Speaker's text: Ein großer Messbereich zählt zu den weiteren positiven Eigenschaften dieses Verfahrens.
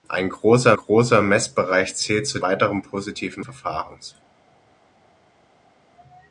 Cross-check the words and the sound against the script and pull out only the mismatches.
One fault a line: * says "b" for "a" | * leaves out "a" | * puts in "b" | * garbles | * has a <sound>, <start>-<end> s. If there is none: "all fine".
* puts in "großer"
* leaves out "den"
* leaves out "Eigenschaften dieses"